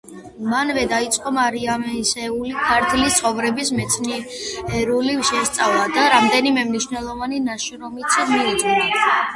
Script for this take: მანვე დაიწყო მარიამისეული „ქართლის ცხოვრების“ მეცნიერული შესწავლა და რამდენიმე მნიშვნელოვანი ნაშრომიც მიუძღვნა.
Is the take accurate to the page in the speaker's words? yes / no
yes